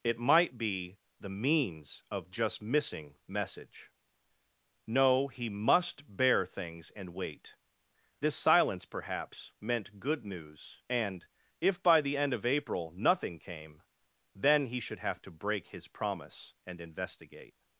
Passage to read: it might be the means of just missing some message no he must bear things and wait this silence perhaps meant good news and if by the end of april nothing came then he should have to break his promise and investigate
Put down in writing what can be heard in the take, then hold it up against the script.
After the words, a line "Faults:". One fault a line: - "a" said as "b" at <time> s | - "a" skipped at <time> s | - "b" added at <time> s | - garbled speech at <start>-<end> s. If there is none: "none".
it might be the means of just missing message no he must bear things and wait this silence perhaps meant good news and if by the end of april nothing came then he should have to break his promise and investigate
Faults:
- "some" skipped at 3.2 s